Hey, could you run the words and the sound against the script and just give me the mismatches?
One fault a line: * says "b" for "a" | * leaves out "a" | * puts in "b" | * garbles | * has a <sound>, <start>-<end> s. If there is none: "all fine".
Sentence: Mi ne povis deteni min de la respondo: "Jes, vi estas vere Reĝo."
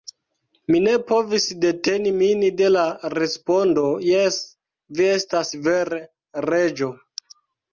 all fine